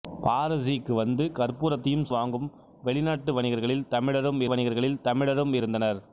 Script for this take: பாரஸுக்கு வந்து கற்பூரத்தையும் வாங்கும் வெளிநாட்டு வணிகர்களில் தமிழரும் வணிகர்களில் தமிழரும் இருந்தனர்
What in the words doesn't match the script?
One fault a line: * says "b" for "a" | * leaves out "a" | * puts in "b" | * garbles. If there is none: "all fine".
all fine